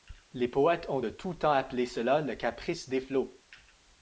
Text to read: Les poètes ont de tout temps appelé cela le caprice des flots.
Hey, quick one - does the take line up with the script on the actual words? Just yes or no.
yes